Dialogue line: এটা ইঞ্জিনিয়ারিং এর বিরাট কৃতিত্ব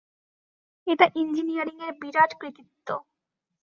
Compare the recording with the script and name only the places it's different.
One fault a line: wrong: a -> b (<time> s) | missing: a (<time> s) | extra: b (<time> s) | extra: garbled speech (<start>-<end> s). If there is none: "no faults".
no faults